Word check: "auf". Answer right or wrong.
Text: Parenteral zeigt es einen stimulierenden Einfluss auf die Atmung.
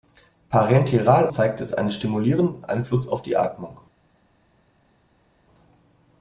right